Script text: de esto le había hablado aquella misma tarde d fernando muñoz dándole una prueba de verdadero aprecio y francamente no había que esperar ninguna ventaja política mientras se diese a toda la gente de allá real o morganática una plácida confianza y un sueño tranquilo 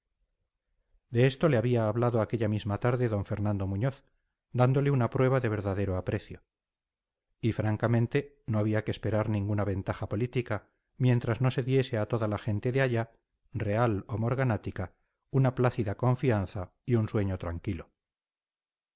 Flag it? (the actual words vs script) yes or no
yes